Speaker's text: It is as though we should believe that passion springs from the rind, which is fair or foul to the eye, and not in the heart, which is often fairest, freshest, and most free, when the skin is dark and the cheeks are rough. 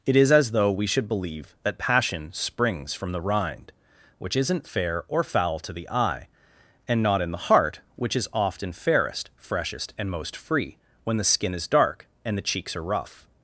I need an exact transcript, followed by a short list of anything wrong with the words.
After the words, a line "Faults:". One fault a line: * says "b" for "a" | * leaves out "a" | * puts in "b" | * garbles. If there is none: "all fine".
It is as though we should believe that passion springs from the rind, which isn't fair or foul to the eye, and not in the heart, which is often fairest, freshest, and most free, when the skin is dark and the cheeks are rough.
Faults:
* says "isn't" for "is"